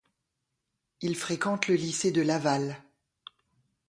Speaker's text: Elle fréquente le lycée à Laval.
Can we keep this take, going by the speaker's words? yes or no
no